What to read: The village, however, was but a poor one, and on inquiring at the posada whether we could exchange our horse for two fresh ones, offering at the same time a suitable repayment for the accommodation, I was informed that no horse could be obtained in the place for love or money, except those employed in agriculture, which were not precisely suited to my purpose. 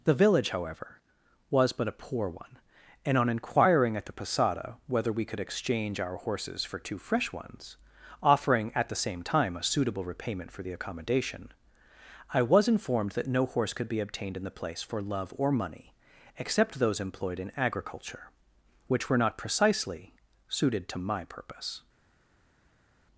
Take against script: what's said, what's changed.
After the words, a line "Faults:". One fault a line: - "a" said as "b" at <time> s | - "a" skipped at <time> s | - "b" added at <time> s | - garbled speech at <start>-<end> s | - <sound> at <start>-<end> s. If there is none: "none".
The village, however, was but a poor one, and on inquiring at the posada whether we could exchange our horses for two fresh ones, offering at the same time a suitable repayment for the accommodation, I was informed that no horse could be obtained in the place for love or money, except those employed in agriculture, which were not precisely suited to my purpose.
Faults:
- "horse" said as "horses" at 6.2 s